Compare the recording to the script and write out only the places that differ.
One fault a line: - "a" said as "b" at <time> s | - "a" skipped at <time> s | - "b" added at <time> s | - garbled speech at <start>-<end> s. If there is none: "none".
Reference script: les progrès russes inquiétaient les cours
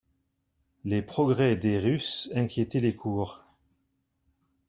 - "des" added at 1.6 s